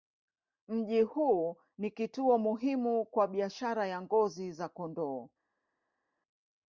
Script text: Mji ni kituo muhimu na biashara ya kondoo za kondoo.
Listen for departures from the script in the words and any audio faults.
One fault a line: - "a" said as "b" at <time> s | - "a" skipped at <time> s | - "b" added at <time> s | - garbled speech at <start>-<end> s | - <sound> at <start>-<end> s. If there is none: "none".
- "huu" added at 1.0 s
- "na" said as "kwa" at 3.0 s
- "kondoo" said as "ngozi" at 4.0 s